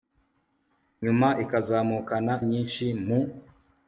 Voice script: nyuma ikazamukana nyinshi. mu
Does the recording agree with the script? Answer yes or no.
yes